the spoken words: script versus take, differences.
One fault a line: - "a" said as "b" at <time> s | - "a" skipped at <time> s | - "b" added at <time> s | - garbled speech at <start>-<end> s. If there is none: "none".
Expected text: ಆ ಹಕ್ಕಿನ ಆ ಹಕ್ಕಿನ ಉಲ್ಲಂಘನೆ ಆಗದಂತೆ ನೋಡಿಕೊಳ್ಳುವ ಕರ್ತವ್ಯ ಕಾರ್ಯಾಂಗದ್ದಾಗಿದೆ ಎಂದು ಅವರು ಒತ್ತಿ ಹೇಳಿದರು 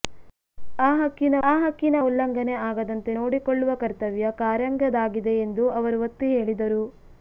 none